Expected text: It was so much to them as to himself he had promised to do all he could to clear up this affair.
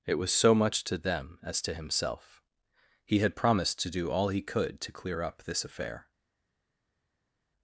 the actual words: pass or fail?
pass